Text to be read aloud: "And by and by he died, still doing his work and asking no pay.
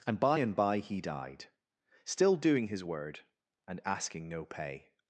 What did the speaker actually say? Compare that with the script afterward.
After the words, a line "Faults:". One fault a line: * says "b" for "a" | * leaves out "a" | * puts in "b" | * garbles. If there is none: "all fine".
"And by and by he died, still doing his word and asking no pay.
Faults:
* says "word" for "work"